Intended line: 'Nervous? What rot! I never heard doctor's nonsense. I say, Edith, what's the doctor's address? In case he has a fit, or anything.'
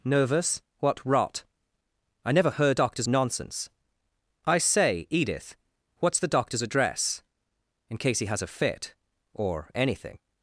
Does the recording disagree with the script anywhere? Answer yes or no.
no